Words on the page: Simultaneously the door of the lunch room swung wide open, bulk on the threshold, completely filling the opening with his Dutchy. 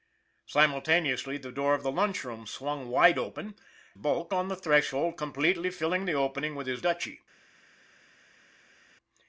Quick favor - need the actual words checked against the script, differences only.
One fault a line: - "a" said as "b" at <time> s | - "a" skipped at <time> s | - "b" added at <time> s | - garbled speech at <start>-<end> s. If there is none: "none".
none